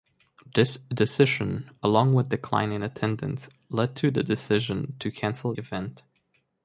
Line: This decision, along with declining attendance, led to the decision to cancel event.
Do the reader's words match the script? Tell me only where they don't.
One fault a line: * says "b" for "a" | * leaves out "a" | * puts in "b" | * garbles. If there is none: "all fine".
all fine